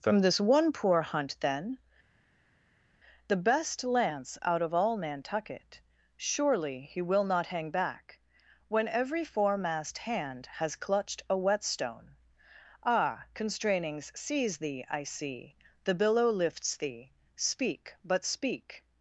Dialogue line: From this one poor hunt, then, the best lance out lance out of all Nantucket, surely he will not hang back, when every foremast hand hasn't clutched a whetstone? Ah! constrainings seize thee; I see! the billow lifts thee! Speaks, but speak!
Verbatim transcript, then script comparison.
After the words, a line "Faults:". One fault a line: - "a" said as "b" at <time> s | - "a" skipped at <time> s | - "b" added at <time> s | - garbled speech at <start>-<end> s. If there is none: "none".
From this one poor hunt, then, the best lance out of all Nantucket, surely he will not hang back, when every foremast hand has clutched a whetstone? Ah! constrainings seize thee; I see! the billow lifts thee! Speak, but speak!
Faults:
- "lance out" skipped at 4.6 s
- "hasn't" said as "has" at 10.5 s
- "Speaks" said as "Speak" at 17.4 s